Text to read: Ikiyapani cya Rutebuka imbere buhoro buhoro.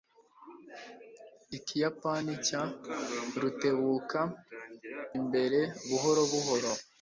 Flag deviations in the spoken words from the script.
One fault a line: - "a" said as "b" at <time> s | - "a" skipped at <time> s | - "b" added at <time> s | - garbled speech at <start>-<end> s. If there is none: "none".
none